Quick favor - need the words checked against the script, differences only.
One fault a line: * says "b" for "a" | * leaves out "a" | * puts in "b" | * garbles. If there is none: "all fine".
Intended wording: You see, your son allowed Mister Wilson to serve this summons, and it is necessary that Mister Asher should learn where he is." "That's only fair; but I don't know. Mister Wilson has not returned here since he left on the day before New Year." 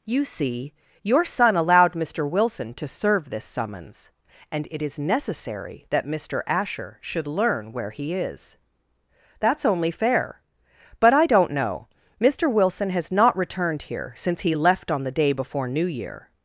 all fine